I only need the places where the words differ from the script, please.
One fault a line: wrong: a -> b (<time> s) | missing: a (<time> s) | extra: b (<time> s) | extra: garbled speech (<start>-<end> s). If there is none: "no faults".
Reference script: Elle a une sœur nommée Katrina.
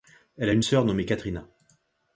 no faults